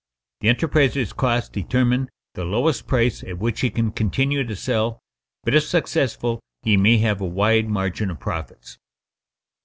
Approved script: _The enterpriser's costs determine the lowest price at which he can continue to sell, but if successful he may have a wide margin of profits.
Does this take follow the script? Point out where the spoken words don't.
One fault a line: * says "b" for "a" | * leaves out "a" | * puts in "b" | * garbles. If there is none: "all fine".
all fine